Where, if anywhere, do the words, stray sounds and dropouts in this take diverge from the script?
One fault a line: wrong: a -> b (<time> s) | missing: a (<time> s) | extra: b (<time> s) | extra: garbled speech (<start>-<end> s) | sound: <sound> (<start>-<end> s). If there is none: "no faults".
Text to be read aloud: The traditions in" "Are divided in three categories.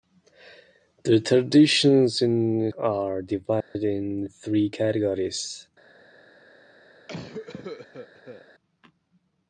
sound: dropout (3.6-3.8 s)
sound: cough (7.1-8.5 s)